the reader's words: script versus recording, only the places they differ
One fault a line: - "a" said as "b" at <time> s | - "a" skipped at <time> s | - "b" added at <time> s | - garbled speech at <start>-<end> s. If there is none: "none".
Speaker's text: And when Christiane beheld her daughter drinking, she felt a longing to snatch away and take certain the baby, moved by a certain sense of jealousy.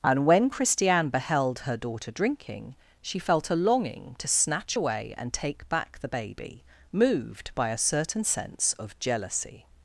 - "certain" said as "back" at 5.7 s